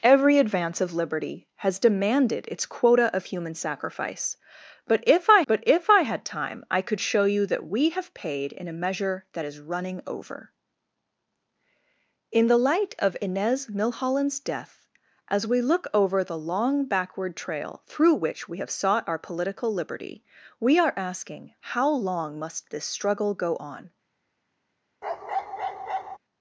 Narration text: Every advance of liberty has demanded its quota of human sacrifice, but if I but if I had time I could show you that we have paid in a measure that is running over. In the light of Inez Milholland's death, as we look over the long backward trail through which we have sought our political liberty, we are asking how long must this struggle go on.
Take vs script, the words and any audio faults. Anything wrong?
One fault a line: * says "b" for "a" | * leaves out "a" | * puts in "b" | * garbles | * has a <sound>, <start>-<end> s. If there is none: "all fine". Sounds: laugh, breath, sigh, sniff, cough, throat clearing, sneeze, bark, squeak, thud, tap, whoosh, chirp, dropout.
* has a bark, 25.0-26.2 s